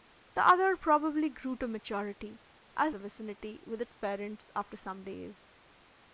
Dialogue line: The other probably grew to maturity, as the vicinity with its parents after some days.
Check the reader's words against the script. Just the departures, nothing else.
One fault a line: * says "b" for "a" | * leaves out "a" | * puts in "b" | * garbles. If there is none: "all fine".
all fine